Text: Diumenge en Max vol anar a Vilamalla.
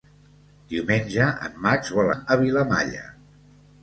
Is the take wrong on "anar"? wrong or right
wrong